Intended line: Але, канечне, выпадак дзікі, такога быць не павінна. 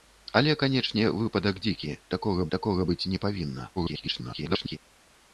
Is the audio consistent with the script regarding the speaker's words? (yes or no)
no